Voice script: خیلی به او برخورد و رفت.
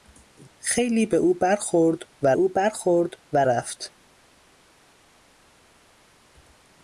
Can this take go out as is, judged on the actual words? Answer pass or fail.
fail